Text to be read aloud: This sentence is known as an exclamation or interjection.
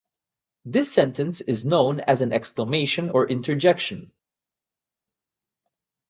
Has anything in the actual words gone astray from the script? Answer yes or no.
no